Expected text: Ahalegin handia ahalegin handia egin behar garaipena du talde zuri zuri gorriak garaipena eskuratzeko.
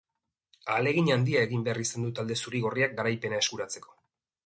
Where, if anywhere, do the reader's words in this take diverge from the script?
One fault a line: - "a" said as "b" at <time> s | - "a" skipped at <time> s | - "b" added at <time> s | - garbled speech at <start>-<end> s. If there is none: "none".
- "ahalegin handia" skipped at 1.4 s
- "garaipena" said as "izan" at 1.8 s
- "zuri" skipped at 2.6 s